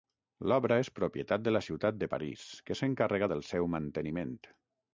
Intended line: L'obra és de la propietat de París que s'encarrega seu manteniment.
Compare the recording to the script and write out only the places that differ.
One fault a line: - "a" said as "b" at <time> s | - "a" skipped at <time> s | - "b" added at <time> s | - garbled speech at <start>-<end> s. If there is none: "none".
- "propietat" added at 1.0 s
- "propietat" said as "ciutat" at 1.7 s
- "del" added at 3.3 s